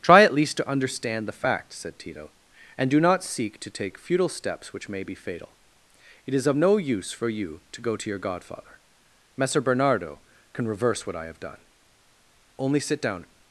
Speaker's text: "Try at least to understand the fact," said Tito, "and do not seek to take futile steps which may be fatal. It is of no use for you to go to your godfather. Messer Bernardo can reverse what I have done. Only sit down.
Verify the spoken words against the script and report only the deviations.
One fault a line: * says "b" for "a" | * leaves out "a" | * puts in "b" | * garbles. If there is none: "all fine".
all fine